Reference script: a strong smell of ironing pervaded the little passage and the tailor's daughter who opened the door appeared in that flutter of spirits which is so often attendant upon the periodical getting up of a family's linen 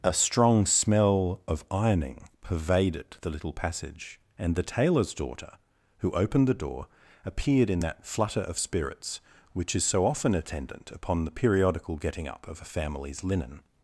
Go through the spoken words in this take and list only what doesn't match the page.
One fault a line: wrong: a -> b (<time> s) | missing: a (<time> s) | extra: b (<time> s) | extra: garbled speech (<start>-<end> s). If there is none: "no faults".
no faults